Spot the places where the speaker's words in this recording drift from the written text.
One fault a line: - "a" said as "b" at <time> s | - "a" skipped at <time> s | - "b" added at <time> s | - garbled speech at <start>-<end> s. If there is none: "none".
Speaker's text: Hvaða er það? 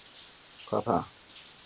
none